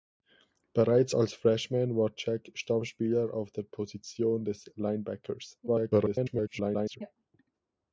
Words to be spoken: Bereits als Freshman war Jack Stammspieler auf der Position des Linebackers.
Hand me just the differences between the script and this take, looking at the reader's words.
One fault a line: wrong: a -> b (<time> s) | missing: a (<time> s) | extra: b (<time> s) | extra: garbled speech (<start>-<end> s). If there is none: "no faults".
extra: garbled speech (5.7-7.0 s)